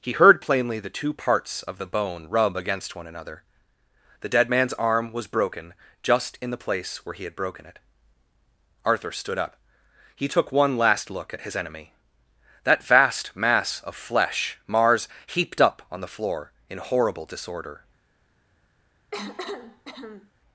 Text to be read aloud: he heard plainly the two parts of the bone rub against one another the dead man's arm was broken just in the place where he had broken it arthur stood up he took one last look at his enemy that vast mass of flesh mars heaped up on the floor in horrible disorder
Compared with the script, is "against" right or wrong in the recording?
right